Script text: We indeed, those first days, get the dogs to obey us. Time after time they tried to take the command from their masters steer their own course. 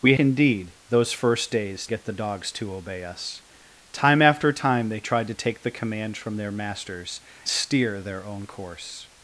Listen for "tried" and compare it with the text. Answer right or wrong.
right